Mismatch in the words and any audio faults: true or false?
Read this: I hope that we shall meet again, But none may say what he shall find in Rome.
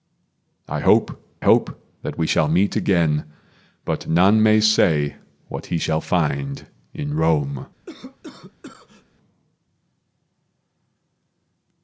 true